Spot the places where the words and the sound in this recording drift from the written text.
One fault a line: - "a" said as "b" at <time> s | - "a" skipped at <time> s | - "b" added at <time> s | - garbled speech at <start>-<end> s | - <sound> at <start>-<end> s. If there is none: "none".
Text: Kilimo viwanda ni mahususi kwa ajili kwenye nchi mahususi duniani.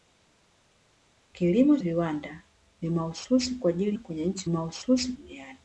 none